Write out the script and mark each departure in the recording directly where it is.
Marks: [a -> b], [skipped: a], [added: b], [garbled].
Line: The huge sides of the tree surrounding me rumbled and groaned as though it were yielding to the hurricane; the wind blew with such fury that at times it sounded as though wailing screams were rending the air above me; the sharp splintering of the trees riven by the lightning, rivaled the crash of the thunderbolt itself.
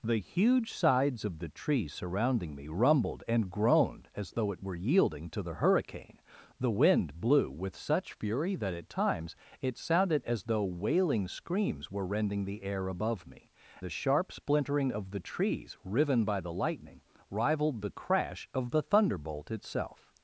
The huge sides of the tree surrounding me rumbled and groaned as though it were yielding to the hurricane; the wind blew with such fury that at times it sounded as though wailing screams were rending the air above me; the sharp splintering of the trees riven by the lightning, rivaled the crash of the thunderbolt itself.